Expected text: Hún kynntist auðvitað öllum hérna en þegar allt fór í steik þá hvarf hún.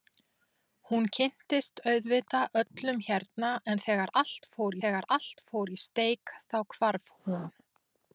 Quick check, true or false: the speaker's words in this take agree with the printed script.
false